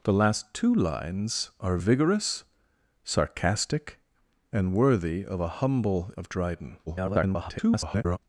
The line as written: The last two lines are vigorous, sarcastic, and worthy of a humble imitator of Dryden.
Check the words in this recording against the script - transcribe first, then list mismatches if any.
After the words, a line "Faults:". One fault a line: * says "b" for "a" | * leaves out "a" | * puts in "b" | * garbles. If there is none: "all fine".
The last two lines are vigorous, sarcastic, and worthy of a humble of Dryden. [garbled]
Faults:
* leaves out "imitator"
* garbles